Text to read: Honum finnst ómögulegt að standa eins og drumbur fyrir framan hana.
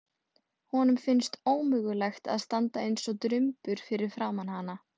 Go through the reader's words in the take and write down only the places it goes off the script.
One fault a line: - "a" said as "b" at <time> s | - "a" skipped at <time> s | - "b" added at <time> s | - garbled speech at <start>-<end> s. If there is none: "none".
none